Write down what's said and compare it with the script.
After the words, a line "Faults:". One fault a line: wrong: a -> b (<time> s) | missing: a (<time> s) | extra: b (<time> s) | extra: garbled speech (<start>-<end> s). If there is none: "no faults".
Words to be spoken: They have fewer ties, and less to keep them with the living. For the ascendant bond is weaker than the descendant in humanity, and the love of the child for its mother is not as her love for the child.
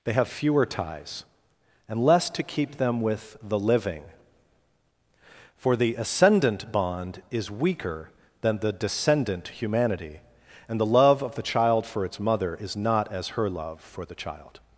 They have fewer ties, and less to keep them with the living. For the ascendant bond is weaker than the descendant humanity, and the love of the child for its mother is not as her love for the child.
Faults:
missing: in (9.5 s)